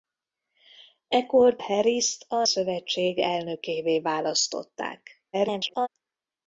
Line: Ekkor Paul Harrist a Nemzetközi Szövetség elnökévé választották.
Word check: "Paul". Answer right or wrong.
wrong